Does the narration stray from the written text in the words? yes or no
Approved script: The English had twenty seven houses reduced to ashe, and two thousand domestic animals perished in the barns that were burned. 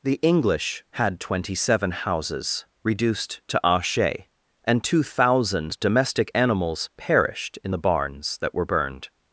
no